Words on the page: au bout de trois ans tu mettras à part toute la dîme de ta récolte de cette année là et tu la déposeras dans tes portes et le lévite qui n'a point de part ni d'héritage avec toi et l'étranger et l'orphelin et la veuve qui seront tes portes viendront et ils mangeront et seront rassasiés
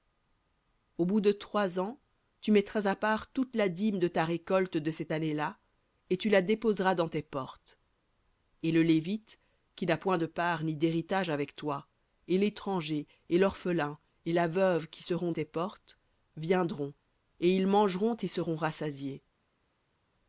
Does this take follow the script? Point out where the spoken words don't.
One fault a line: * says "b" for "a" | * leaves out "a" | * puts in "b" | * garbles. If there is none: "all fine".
all fine